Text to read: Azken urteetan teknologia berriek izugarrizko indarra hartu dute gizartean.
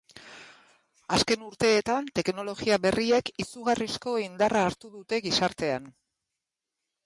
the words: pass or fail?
pass